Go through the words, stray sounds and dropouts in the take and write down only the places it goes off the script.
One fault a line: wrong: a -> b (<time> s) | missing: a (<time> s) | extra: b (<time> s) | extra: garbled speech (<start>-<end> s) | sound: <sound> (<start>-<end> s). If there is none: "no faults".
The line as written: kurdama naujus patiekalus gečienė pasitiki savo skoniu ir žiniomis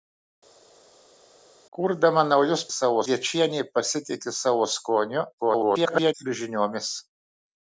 wrong: patiekalus -> savo (2.7 s)
extra: garbled speech (5.4-6.1 s)